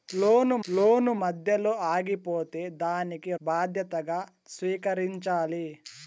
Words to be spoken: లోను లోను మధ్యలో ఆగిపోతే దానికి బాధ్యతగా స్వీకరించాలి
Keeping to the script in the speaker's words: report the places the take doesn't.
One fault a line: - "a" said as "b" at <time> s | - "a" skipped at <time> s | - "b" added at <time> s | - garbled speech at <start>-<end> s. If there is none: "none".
none